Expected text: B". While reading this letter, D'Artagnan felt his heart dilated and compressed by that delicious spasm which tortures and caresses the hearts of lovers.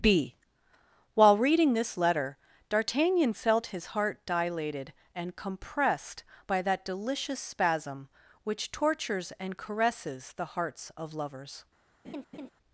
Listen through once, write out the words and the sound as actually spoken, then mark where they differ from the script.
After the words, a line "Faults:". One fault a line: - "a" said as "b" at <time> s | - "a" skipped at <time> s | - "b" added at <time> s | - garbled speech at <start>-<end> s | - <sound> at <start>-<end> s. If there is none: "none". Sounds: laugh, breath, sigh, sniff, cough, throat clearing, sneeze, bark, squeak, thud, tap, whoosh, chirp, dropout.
B". While reading this letter, D'Artagnan felt his heart dilated and compressed by that delicious spasm which tortures and caresses the hearts of lovers.
Faults:
- laugh at 12.0-12.5 s